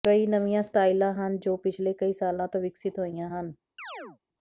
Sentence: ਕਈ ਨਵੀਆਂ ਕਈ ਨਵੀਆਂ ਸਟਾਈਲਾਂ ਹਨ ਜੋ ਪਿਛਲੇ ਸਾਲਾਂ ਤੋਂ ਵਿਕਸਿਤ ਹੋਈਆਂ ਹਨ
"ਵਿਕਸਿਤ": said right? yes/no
yes